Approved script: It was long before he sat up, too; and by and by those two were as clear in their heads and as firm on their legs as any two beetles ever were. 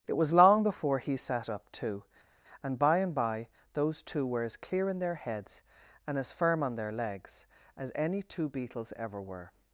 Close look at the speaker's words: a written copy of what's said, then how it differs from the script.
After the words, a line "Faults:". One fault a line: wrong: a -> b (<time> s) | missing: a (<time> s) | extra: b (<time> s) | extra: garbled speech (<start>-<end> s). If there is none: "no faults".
It was long before he sat up, too; and by and by those two were as clear in their heads and as firm on their legs as any two beetles ever were.
Faults:
no faults